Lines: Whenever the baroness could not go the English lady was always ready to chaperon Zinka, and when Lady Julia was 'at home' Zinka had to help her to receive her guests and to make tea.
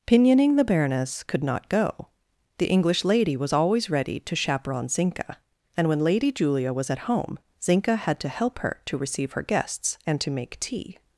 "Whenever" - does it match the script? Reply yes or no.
no